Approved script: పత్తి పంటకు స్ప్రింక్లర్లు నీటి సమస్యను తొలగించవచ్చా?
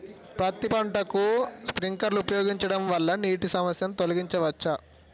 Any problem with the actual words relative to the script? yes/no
yes